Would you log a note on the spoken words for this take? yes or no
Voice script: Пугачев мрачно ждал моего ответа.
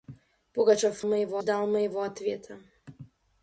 yes